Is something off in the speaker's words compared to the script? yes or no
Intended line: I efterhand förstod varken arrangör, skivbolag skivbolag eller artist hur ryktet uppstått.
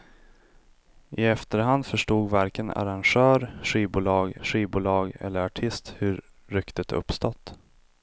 no